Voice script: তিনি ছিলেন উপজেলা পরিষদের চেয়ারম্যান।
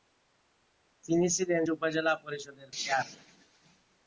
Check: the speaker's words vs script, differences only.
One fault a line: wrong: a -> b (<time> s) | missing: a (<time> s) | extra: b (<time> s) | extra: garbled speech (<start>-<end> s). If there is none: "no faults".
no faults